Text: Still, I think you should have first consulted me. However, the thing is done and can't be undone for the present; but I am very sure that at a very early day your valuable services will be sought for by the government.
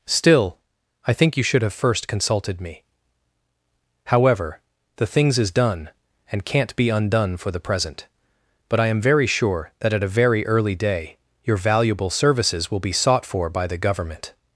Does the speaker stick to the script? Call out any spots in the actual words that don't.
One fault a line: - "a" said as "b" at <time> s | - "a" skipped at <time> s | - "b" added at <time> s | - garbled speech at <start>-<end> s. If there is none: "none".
- "thing" said as "things" at 5.1 s